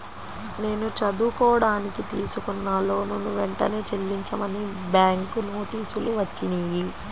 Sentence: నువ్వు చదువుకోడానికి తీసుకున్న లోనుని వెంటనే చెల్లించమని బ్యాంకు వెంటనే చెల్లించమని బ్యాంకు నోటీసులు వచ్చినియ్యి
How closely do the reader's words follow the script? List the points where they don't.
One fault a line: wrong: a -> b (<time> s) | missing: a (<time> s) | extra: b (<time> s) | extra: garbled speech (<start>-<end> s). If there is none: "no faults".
wrong: నువ్వు -> నేను (0.6 s)
missing: వెంటనే చెల్లించమని బ్యాంకు (5.4 s)